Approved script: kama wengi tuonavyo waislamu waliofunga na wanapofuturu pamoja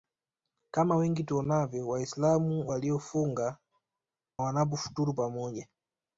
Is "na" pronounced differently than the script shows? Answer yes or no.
yes